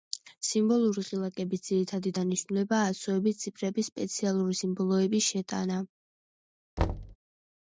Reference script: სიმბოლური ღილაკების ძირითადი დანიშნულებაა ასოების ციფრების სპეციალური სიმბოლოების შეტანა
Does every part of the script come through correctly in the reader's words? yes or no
yes